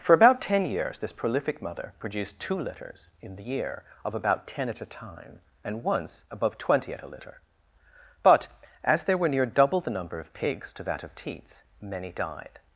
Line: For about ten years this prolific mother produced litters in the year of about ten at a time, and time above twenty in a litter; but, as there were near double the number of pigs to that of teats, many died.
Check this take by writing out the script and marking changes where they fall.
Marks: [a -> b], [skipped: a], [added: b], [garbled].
For about ten years this prolific mother produced [added: two] litters in the year of about ten at a time, and [time -> once] above twenty [in -> at] a litter; but, as there were near double the number of pigs to that of teats, many died.